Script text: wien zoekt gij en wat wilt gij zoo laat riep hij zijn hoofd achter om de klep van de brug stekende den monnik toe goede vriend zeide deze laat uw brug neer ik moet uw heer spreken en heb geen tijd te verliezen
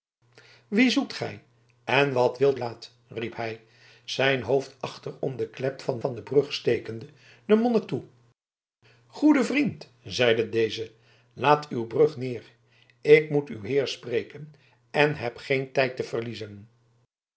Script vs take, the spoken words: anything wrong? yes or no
yes